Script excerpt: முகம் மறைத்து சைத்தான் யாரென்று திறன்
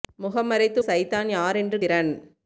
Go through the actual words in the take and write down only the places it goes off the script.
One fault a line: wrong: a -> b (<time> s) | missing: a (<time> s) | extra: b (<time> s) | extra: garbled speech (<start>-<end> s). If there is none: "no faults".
no faults